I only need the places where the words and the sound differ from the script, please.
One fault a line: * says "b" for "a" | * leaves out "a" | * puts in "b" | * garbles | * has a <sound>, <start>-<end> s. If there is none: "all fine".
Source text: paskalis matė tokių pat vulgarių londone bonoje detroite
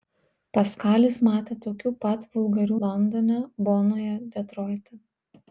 all fine